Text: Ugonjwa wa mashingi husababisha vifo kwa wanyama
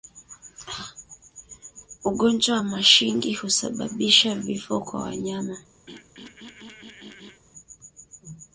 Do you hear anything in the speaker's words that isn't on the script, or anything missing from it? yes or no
no